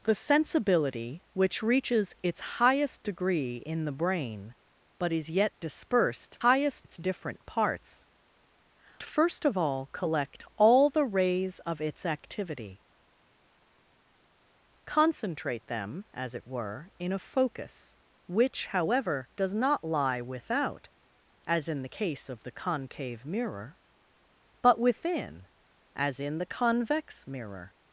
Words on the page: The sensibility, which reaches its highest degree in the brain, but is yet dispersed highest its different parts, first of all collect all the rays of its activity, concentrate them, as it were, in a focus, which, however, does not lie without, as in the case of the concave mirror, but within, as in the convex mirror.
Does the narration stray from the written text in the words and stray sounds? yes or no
no